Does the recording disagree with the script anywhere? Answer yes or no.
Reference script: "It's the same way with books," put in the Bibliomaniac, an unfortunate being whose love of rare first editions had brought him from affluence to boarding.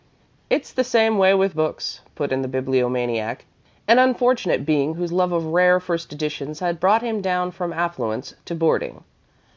yes